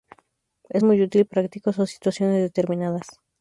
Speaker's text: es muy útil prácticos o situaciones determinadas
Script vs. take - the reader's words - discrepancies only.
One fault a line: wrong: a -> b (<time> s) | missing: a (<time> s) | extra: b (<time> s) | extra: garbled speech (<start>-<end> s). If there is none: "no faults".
no faults